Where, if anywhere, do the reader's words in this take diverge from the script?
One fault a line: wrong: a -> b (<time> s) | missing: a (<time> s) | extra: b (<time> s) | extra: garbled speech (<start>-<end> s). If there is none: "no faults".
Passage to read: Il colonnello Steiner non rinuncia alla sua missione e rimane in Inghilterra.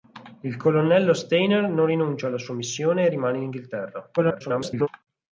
extra: garbled speech (4.2-4.9 s)